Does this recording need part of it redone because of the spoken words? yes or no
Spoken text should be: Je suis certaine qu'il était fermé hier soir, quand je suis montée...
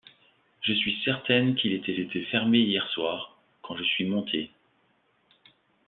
yes